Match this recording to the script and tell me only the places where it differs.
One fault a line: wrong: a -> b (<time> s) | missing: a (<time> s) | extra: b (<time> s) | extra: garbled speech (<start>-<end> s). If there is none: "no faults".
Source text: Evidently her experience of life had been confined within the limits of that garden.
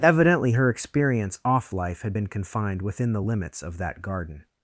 wrong: of -> off (1.4 s)